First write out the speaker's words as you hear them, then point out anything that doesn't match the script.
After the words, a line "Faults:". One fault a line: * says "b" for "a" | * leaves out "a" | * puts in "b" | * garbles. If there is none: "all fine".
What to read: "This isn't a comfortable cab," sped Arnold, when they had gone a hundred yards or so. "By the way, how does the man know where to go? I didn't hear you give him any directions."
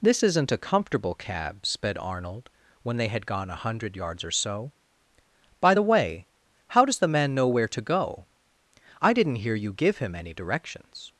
"This isn't a comfortable cab," sped Arnold, when they had gone a hundred yards or so. "By the way, how does the man know where to go? I didn't hear you give him any directions."
Faults:
all fine